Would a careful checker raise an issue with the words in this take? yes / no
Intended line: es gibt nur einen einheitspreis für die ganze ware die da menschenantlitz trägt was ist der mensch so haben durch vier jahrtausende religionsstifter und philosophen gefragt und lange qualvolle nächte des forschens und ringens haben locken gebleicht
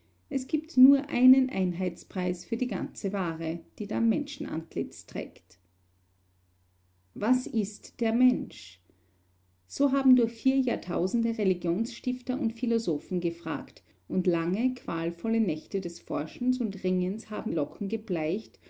no